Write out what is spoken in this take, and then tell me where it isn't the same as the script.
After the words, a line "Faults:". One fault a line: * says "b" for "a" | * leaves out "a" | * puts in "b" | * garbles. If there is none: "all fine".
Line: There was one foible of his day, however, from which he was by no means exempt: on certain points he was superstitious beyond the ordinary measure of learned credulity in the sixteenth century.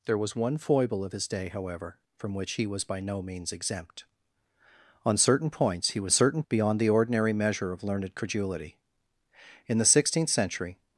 There was one foible of his day, however, from which he was by no means exempt: on certain points he was certain beyond the ordinary measure of learned credulity in the sixteenth century.
Faults:
* says "certain" for "superstitious"